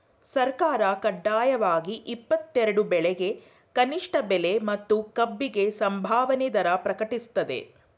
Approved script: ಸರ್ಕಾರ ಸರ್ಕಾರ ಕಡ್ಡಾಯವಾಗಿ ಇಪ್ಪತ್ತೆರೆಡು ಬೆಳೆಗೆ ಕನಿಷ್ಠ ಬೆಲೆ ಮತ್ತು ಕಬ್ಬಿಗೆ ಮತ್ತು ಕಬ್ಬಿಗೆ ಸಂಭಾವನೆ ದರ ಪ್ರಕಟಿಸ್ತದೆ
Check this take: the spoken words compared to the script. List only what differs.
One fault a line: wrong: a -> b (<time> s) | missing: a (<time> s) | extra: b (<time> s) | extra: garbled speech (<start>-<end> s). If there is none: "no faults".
missing: ಸರ್ಕಾರ (0.8 s)
missing: ಮತ್ತು ಕಬ್ಬಿಗೆ (5.6 s)